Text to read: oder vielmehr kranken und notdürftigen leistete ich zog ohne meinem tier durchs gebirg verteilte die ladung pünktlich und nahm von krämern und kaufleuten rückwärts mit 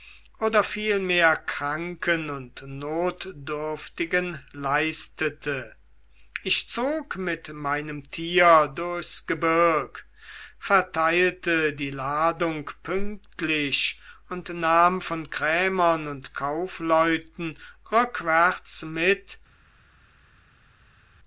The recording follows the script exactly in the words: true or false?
false